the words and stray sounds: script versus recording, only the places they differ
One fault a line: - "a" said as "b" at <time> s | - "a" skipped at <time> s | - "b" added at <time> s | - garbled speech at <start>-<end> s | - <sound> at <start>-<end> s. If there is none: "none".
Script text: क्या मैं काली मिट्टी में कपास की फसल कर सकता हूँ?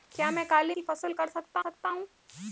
- "मिट्टी में कपास" skipped at 0.8 s
- "सकता" added at 1.6 s